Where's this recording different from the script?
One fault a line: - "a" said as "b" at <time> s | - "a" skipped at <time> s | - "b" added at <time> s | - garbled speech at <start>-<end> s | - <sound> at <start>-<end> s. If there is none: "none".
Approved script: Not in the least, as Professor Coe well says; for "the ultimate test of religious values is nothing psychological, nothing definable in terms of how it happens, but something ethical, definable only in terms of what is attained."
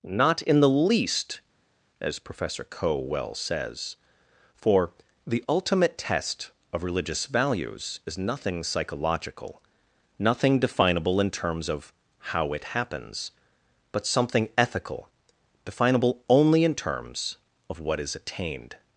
none